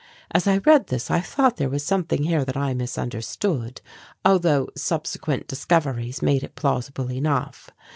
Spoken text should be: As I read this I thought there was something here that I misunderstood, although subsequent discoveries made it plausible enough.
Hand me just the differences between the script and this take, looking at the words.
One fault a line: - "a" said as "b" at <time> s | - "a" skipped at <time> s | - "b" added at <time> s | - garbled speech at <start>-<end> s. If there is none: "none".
none